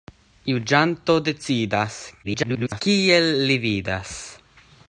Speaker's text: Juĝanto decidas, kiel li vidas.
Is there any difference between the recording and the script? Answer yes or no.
yes